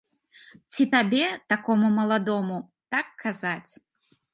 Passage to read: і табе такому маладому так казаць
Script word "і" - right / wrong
wrong